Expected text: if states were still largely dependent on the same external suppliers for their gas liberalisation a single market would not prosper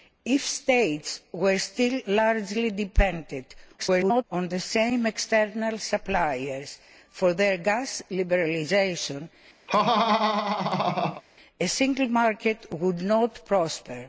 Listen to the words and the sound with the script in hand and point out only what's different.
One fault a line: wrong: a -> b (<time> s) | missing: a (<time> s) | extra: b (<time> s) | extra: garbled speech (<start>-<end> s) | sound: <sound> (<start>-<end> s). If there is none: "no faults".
extra: garbled speech (3.8-4.2 s)
sound: laugh (9.7-11.2 s)